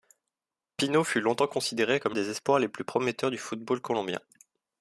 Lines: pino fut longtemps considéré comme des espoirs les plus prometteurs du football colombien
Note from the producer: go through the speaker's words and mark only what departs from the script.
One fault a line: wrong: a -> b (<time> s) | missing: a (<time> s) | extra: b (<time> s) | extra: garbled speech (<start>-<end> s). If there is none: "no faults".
no faults